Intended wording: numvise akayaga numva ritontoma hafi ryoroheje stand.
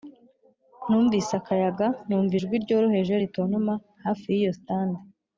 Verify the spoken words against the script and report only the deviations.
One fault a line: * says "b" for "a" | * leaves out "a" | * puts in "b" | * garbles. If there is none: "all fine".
* puts in "ijwi ryoroheje"
* says "yiyo" for "ryoroheje"